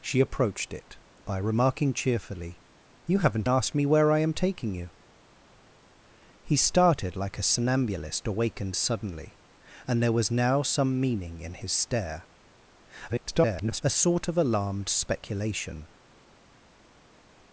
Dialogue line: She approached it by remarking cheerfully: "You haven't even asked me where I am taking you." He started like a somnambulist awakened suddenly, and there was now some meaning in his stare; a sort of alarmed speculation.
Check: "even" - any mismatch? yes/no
yes